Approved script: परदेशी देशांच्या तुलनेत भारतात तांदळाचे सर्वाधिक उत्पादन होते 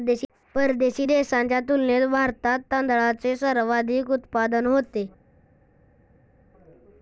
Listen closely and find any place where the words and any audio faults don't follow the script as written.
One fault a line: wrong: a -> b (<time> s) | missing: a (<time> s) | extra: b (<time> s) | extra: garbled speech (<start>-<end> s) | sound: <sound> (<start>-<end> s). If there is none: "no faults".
no faults